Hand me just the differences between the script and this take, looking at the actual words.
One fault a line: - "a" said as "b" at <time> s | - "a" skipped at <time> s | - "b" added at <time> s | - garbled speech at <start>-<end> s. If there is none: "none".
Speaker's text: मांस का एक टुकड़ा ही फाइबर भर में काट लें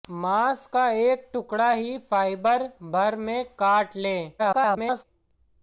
- garbled speech at 4.4-5.0 s